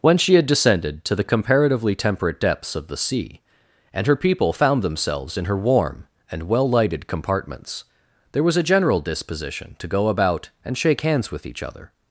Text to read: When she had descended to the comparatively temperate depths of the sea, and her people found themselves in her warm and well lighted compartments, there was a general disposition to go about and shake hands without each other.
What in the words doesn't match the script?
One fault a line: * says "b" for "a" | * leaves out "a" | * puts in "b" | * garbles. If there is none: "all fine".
* says "with" for "without"